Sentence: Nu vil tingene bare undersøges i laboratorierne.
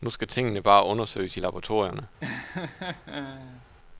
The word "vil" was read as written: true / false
false